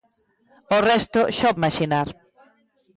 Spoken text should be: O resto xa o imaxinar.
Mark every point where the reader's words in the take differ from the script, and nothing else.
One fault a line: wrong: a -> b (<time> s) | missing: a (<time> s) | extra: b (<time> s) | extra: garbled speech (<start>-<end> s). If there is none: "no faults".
no faults